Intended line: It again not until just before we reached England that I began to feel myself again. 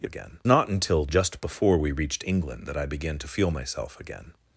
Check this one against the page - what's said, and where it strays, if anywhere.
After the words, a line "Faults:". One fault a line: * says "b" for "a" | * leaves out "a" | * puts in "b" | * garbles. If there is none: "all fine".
It again not until just before we reached England that I began to feel myself again.
Faults:
all fine